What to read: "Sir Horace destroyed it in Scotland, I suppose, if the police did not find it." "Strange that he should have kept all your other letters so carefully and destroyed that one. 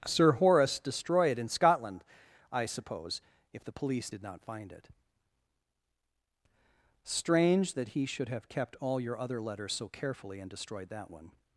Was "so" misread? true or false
false